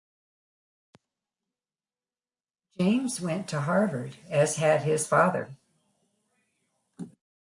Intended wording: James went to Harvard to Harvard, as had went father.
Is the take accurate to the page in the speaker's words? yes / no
no